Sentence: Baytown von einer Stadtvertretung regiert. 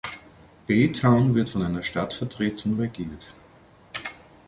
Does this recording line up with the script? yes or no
no